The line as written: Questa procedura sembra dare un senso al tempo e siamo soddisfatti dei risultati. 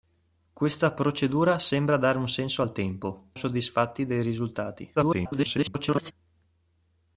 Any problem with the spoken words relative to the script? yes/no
yes